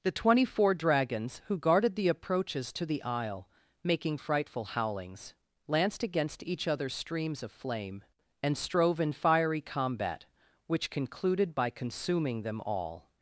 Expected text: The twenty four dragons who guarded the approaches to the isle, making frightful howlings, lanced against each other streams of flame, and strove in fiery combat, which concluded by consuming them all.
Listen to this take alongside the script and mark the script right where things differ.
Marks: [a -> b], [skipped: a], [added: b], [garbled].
The twenty four dragons who guarded the approaches to the isle, making frightful howlings, lanced against each other streams of flame, and strove in fiery combat, which concluded by consuming them all.